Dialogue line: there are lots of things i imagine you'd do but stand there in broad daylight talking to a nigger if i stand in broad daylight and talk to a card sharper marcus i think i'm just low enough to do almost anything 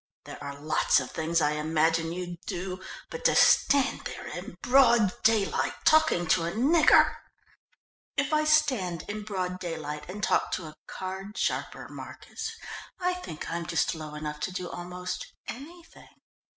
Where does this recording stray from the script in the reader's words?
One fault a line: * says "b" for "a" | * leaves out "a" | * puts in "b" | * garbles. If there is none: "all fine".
* puts in "to"